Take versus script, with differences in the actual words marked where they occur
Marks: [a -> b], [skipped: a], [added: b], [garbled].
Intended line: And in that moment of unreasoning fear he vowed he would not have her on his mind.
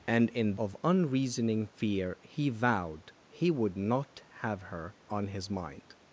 And in [skipped: that moment] of unreasoning fear he vowed he would not have her on his mind.